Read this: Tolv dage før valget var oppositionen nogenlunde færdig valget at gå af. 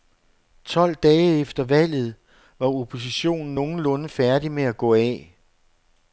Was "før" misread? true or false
true